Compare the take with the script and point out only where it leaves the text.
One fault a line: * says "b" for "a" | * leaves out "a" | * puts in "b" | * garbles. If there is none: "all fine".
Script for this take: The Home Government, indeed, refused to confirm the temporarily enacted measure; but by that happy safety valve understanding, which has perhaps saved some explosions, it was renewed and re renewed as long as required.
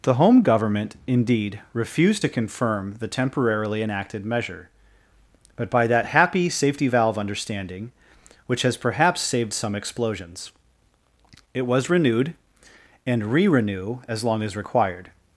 * says "renew" for "renewed"